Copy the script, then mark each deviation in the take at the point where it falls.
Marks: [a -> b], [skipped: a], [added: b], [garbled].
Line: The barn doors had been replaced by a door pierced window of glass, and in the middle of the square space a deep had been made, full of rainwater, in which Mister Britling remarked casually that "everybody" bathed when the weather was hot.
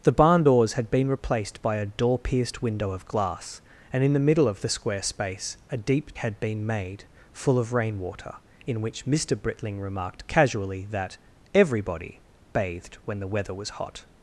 The barn doors had been replaced by a door pierced window of glass, and in the middle of the square space a deep had been made, full of rainwater, in which Mister Britling remarked casually that "everybody" bathed when the weather was hot.